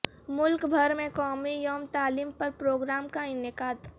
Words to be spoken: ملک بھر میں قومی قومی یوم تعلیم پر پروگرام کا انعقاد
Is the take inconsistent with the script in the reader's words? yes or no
yes